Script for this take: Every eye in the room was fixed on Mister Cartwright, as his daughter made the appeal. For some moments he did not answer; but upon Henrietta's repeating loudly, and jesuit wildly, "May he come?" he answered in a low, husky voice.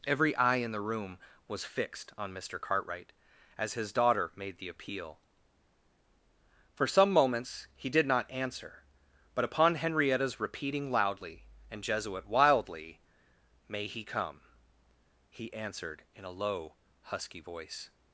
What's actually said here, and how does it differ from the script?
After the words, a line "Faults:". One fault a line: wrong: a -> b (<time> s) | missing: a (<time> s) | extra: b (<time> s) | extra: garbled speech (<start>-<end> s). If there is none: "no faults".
Every eye in the room was fixed on Mister Cartwright, as his daughter made the appeal. For some moments he did not answer; but upon Henrietta's repeating loudly, and jesuit wildly, "May he come?" he answered in a low, husky voice.
Faults:
no faults